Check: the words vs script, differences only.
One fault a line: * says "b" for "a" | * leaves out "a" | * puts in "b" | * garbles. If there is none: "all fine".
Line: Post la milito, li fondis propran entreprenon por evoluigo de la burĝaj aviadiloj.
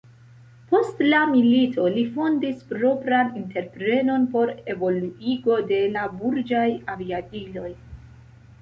all fine